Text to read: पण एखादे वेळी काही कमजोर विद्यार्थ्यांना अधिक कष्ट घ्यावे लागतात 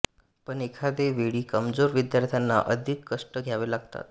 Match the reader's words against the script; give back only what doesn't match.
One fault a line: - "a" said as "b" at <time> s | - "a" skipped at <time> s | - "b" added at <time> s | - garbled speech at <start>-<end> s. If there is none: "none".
- "काही" skipped at 1.4 s